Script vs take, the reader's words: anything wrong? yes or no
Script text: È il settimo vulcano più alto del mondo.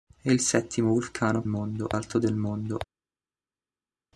yes